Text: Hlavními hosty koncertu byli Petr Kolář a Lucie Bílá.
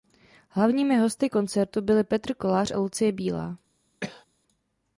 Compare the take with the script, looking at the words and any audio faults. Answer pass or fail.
fail